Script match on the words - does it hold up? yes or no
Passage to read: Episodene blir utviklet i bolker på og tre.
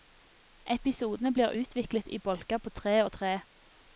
no